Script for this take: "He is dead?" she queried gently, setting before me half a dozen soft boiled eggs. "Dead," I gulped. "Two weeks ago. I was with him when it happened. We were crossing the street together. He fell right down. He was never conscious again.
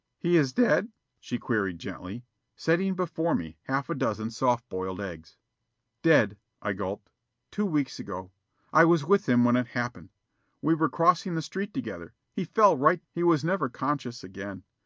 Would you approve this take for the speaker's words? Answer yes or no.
no